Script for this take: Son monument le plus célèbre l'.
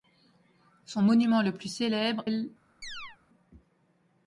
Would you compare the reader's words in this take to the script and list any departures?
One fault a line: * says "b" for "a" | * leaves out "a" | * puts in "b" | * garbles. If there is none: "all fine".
all fine